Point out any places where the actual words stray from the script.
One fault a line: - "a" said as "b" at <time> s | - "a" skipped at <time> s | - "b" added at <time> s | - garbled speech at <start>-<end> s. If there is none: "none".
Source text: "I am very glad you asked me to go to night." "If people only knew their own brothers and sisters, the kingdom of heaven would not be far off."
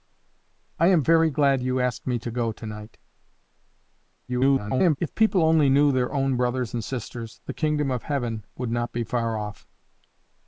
- garbled speech at 4.3-5.0 s